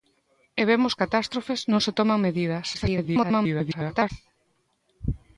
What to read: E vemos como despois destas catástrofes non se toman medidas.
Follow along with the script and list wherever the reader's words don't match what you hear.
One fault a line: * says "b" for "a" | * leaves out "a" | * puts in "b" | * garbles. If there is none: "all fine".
* leaves out "como despois destas"
* garbles